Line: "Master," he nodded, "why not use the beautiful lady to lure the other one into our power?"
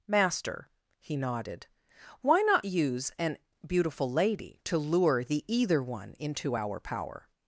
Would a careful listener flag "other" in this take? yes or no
yes